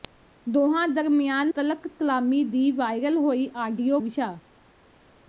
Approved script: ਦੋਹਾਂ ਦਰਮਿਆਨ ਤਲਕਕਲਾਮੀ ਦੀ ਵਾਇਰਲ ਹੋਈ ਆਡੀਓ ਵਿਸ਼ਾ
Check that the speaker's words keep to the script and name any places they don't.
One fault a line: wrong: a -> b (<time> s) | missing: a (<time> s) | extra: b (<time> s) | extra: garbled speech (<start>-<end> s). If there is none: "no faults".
no faults